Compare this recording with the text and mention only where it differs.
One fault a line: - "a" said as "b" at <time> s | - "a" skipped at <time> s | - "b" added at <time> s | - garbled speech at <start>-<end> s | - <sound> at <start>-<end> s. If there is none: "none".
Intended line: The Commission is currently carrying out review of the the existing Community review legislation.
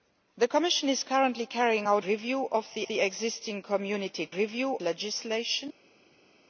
none